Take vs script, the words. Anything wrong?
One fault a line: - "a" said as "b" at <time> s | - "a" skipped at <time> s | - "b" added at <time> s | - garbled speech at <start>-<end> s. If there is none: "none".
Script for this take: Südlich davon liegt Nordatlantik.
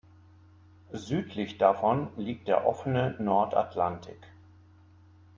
- "der offene" added at 2.5 s